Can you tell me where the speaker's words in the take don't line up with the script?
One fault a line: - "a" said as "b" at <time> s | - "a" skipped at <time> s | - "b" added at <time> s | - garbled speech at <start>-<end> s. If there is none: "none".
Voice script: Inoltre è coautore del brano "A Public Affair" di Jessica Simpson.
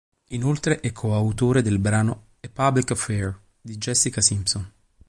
none